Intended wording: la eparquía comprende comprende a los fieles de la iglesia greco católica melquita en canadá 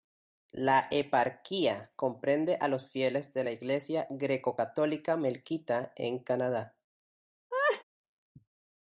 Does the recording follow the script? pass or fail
fail